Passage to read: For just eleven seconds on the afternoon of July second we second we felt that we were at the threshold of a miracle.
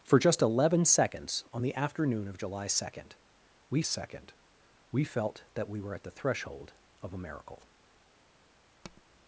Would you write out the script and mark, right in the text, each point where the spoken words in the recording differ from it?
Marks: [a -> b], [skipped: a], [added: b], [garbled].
For just eleven seconds on the afternoon of July second we second we felt that we were at the threshold of a miracle.